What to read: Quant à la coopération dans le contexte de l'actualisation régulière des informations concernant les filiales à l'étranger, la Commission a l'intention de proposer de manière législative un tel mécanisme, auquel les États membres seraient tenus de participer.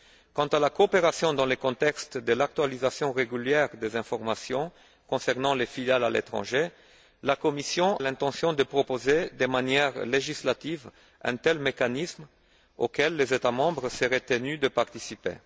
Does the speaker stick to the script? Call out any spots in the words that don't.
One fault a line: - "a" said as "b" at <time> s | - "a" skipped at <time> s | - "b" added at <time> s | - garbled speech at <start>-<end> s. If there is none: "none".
- "a" skipped at 8.0 s